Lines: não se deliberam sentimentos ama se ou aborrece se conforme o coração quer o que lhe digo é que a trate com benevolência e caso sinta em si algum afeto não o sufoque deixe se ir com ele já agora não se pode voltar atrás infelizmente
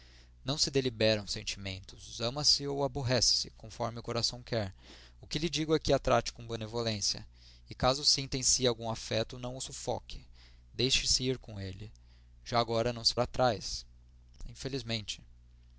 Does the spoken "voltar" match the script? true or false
false